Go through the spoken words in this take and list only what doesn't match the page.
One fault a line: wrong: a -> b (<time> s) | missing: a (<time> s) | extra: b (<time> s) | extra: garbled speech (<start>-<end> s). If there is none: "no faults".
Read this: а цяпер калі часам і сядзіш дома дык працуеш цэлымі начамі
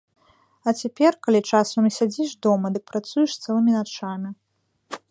no faults